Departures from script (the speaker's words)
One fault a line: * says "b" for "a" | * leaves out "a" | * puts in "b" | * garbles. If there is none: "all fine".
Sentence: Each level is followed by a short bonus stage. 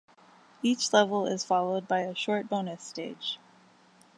all fine